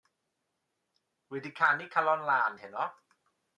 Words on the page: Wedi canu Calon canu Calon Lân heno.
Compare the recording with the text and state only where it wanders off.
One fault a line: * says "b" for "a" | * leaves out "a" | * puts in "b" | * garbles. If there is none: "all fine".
* leaves out "canu Calon"